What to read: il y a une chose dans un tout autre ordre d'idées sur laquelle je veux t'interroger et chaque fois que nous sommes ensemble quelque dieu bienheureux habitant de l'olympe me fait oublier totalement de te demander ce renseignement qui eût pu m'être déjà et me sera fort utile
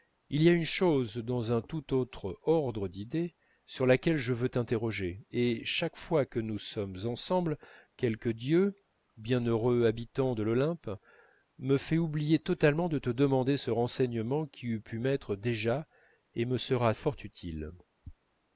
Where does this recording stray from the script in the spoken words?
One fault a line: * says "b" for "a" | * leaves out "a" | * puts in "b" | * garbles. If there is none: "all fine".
all fine